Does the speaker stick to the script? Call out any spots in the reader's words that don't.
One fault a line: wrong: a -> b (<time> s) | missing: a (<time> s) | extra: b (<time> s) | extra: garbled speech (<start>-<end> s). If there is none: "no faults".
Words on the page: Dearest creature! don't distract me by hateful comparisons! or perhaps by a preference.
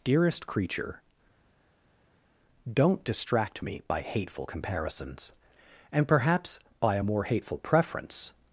wrong: or -> and (5.9 s)
extra: more hateful (7.0 s)